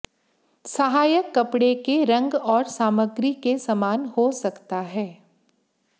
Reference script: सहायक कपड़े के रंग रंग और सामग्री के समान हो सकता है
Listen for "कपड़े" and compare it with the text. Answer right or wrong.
right